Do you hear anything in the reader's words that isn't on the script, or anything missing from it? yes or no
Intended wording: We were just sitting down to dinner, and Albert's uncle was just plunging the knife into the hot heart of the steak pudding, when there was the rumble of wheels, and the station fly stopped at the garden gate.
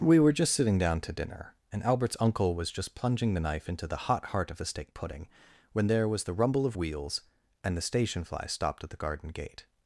no